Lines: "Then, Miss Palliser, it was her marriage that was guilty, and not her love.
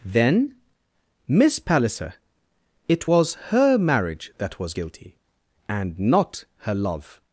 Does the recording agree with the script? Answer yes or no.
yes